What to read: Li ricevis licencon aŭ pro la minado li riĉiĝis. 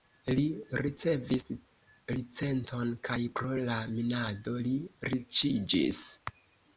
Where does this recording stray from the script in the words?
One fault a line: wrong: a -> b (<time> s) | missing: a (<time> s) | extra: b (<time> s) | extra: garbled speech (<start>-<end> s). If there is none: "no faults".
wrong: aŭ -> kaj (3.1 s)